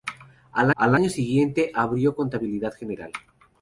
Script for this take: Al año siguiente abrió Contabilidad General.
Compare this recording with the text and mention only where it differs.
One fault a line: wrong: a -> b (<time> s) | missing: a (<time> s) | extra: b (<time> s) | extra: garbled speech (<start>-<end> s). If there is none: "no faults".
extra: al (0.8 s)